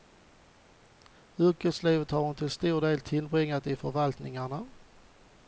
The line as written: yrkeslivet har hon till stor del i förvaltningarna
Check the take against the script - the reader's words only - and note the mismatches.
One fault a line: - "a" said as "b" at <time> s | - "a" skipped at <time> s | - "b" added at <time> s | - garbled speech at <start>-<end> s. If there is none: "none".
- "tillbringat" added at 3.0 s